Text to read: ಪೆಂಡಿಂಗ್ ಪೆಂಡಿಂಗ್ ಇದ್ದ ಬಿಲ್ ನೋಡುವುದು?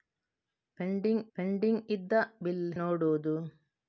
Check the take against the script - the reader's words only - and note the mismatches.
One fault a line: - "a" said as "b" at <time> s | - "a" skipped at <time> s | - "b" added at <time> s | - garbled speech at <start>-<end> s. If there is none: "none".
none